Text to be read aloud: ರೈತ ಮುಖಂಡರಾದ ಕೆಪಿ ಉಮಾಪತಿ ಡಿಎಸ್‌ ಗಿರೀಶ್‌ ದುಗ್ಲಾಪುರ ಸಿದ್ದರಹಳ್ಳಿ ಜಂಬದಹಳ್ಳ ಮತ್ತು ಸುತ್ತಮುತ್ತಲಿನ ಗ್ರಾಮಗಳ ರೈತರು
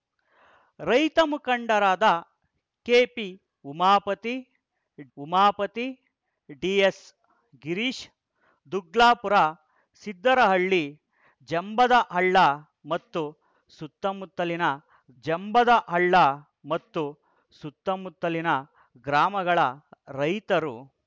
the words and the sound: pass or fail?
fail